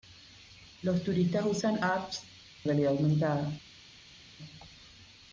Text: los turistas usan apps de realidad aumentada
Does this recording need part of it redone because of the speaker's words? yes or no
yes